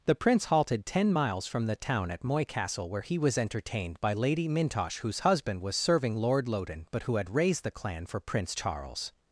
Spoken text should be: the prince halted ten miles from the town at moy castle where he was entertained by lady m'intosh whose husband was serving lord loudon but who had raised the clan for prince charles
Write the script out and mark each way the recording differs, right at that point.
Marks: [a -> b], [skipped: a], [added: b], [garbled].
the prince halted ten miles from the town at moy castle where he was entertained by lady m'intosh whose husband was serving lord loudon but who had raised the clan for prince charles